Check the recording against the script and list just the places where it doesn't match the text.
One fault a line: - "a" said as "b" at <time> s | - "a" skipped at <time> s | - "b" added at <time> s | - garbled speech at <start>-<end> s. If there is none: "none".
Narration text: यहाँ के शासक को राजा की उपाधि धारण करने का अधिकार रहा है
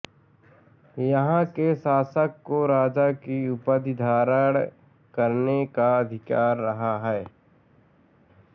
none